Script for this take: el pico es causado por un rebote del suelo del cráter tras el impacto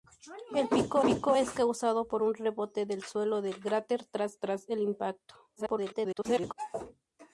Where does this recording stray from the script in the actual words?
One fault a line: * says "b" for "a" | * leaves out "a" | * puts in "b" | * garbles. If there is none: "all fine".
* puts in "pico"
* puts in "tras"
* garbles